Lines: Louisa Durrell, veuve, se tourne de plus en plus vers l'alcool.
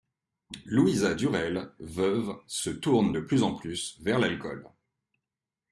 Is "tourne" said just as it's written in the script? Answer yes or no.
yes